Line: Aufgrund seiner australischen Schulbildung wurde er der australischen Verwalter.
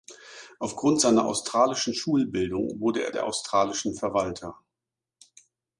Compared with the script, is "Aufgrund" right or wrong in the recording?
right